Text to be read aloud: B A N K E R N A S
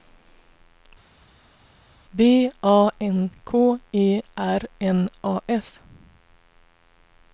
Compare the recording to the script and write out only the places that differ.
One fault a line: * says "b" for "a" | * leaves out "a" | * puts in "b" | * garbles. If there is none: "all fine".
all fine